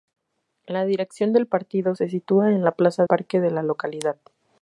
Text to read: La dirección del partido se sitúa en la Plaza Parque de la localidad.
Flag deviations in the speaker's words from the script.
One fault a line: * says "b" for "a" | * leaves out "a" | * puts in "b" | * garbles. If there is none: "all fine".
all fine